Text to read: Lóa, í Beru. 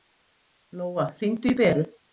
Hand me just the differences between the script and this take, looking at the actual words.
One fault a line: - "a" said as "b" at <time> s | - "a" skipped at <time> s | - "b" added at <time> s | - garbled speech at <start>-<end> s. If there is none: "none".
- "hringdu" added at 1.2 s